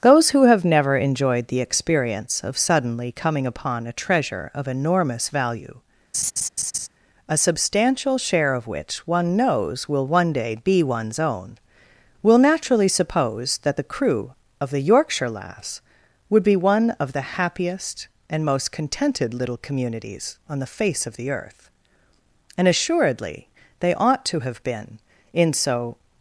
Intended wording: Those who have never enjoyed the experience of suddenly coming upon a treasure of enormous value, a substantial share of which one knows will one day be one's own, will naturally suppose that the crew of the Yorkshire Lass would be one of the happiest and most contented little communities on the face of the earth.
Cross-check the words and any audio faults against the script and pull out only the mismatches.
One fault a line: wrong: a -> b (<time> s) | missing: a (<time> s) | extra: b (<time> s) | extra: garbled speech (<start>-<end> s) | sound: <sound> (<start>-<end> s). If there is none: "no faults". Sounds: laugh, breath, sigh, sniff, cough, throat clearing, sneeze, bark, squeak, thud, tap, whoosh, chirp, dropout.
sound: laugh (6.1-6.9 s)
extra: And assuredly they ought to have been in so (22.6 s)